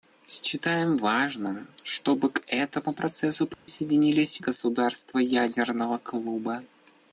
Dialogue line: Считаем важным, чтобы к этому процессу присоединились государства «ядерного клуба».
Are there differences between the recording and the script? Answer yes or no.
no